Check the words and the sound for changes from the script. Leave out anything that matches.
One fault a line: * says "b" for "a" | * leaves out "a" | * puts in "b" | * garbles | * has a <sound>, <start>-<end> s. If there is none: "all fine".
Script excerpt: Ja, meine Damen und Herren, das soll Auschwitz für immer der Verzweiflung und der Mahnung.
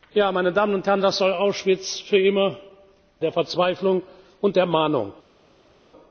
all fine